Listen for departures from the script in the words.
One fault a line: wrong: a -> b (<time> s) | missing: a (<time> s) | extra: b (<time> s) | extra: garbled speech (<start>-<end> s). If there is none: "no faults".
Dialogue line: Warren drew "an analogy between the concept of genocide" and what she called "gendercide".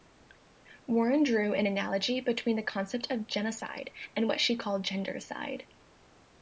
no faults